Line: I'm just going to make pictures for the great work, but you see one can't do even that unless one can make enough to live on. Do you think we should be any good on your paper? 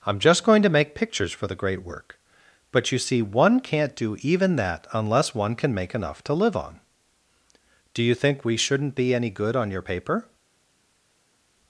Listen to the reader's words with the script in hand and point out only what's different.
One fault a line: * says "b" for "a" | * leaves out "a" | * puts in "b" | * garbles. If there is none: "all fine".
* says "shouldn't" for "should"